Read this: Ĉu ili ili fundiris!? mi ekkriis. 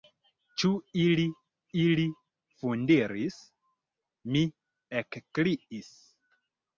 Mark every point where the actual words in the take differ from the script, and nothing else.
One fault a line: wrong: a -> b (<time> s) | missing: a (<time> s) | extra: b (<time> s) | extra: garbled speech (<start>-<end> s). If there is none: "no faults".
no faults